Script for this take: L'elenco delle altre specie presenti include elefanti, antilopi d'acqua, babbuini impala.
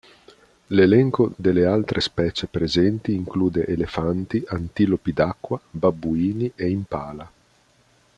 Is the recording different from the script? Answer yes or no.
yes